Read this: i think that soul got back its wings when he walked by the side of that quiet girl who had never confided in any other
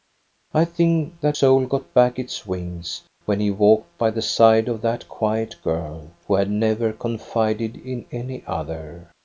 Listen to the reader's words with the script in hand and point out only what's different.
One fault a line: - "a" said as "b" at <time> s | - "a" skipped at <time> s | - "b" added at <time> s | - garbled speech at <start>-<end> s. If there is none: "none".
none